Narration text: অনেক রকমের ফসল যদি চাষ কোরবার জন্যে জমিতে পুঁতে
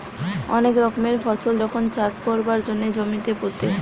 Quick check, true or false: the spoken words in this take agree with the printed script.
false